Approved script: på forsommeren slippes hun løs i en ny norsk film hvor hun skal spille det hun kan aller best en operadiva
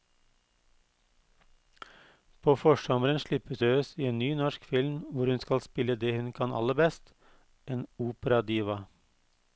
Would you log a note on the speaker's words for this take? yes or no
yes